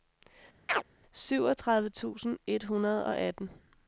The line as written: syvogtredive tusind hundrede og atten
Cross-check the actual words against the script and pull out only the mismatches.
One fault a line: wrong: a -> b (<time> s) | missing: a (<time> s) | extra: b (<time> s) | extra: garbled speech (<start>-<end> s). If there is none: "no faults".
extra: et (2.5 s)